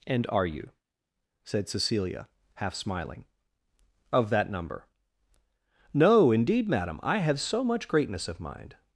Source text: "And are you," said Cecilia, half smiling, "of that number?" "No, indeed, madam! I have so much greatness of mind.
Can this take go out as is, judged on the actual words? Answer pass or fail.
pass